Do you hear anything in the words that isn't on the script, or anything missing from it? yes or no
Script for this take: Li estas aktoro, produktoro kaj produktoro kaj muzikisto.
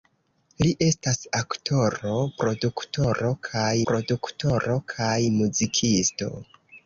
no